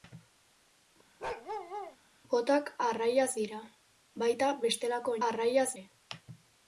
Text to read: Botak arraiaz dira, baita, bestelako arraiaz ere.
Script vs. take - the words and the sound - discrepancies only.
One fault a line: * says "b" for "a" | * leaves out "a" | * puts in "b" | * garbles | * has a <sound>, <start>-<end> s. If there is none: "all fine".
* has a bark, 1.2-2.0 s